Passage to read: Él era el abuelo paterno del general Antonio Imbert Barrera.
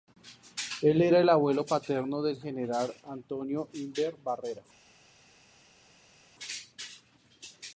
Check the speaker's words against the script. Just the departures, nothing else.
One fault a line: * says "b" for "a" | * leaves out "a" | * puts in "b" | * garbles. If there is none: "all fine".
all fine